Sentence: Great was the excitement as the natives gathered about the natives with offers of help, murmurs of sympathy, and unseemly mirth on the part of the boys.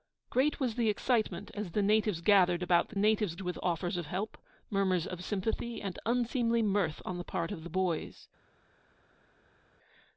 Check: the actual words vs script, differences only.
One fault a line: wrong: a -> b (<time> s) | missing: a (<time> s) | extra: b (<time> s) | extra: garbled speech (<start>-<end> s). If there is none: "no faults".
no faults